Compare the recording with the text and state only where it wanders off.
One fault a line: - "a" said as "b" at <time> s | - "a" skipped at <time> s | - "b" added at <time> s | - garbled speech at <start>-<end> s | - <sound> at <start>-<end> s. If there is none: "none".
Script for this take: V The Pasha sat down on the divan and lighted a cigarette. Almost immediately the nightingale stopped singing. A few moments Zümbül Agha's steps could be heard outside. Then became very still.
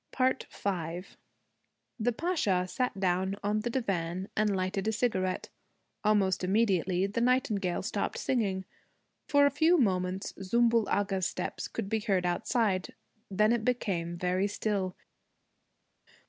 - "For" added at 9.3 s
- "it" added at 13.5 s